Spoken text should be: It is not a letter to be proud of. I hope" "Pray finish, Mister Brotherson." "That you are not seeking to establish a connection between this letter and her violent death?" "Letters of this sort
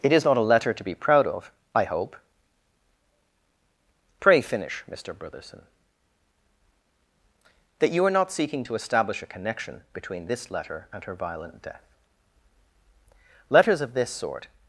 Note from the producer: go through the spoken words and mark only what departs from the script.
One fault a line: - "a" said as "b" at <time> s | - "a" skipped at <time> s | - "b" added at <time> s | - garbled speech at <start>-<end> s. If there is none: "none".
none